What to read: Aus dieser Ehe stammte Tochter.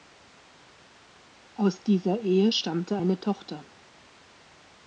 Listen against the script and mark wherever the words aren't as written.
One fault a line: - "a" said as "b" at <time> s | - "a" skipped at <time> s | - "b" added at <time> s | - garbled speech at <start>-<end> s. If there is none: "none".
- "eine" added at 2.9 s